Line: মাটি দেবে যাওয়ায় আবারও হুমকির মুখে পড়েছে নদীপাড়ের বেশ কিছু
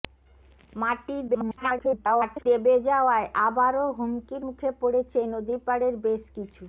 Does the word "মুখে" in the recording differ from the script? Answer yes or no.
no